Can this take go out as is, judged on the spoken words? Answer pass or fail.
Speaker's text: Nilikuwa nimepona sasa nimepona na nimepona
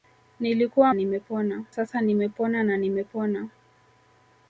pass